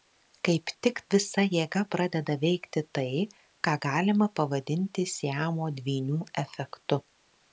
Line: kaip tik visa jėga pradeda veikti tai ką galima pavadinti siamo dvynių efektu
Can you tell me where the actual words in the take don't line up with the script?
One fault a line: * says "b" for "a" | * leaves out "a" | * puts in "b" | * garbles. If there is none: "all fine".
all fine